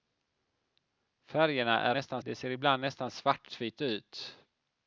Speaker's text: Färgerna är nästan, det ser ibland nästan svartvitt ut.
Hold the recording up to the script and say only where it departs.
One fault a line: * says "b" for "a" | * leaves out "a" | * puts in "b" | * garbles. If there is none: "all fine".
all fine